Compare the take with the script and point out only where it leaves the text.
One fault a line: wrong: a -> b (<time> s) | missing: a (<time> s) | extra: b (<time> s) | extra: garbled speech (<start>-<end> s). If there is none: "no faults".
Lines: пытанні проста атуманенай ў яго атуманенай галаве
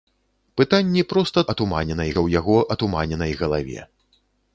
no faults